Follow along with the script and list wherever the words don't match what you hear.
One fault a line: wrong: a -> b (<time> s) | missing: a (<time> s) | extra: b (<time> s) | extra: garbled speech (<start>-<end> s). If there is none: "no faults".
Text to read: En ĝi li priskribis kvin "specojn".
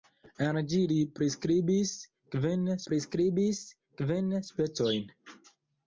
extra: priskribis kvin (2.9 s)